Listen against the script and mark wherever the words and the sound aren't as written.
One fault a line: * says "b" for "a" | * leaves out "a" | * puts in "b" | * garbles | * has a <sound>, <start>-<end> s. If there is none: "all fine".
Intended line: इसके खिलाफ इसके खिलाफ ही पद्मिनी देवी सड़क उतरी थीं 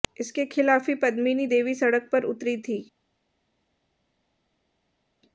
* leaves out "इसके खिलाफ"
* puts in "पर"